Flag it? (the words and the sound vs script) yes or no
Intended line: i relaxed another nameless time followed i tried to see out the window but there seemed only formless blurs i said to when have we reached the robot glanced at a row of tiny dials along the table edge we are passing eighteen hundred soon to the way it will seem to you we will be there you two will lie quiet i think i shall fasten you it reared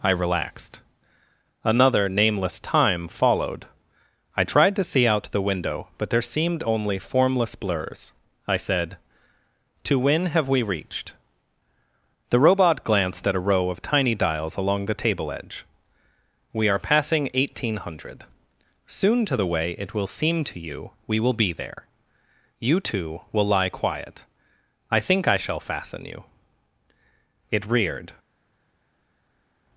no